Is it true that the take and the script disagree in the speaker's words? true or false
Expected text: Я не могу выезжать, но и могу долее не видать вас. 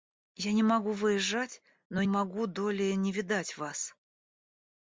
false